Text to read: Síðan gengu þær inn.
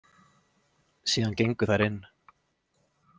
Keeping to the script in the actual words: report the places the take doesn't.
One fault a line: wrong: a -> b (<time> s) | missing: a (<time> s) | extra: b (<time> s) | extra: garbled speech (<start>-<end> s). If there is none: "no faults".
no faults